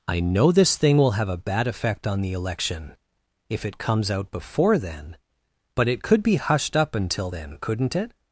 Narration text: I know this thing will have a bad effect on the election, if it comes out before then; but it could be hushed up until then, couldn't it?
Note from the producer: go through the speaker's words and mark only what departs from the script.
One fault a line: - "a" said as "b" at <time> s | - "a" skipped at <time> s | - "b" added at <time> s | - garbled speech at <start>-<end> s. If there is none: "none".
none